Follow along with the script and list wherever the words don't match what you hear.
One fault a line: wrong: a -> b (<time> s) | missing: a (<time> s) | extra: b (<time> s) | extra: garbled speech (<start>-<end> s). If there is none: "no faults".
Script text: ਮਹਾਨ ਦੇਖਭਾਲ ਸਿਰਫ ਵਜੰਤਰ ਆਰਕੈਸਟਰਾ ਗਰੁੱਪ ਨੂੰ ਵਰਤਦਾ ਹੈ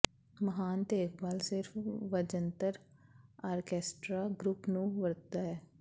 no faults